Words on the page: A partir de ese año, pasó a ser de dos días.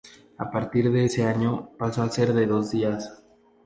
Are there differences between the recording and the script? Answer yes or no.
no